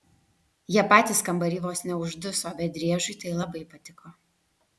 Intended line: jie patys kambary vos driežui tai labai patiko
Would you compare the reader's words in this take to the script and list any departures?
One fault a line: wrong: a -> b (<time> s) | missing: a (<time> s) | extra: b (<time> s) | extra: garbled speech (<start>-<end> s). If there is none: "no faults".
extra: neužduso bet (1.9 s)